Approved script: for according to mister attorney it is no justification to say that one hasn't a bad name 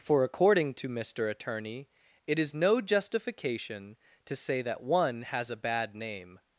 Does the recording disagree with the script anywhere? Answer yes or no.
yes